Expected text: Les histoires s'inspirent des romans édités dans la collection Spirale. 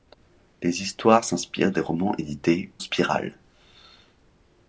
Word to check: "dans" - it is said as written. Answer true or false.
false